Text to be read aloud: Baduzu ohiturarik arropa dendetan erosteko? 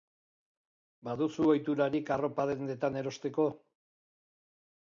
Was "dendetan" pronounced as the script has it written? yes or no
yes